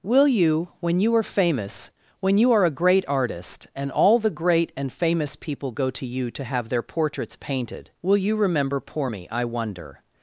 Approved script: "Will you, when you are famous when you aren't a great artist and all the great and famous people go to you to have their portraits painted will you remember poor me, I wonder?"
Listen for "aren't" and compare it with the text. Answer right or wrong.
wrong